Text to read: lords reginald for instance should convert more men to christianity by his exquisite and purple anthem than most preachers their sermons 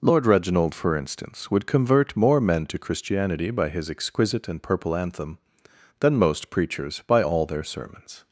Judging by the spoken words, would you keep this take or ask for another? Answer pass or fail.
fail